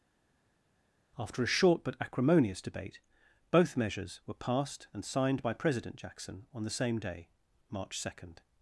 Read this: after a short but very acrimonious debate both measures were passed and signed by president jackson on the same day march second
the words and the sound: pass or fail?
fail